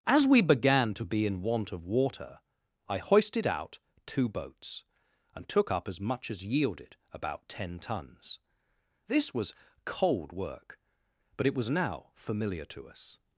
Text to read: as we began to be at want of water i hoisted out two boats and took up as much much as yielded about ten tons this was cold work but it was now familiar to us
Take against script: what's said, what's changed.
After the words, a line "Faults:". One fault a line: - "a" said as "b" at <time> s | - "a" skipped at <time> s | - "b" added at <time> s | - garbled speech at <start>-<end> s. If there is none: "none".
as we began to be in want of water i hoisted out two boats and took up as much as yielded about ten tons this was cold work but it was now familiar to us
Faults:
- "at" said as "in" at 1.3 s
- "much" skipped at 6.3 s